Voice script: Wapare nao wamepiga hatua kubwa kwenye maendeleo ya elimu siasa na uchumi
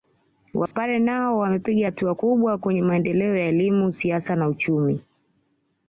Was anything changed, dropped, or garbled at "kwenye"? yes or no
no